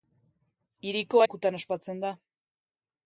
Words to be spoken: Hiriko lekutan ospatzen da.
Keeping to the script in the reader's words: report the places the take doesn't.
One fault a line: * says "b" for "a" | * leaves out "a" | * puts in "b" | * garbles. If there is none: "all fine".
all fine